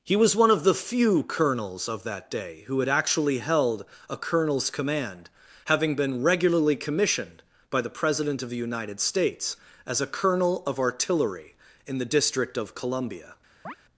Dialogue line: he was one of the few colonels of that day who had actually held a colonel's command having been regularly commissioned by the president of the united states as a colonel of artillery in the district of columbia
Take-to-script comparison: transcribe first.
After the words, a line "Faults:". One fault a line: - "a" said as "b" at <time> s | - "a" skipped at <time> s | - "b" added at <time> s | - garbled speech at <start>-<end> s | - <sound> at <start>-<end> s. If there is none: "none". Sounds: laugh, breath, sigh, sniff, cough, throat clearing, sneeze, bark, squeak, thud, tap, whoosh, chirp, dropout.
he was one of the few colonels of that day who had actually held a colonel's command having been regularly commissioned by the president of the united states as a colonel of artillery in the district of columbia
Faults:
- chirp at 13.6-13.8 s